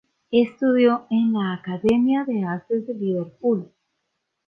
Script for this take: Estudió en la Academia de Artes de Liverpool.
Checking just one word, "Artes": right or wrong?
right